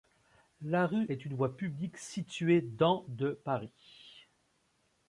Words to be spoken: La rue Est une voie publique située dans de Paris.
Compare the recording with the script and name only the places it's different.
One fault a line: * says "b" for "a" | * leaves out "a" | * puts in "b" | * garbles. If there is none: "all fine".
all fine